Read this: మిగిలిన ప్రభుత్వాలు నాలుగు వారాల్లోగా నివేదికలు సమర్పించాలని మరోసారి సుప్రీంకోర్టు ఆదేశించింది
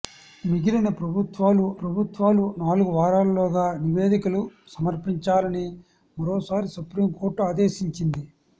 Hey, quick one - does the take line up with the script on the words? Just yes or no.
no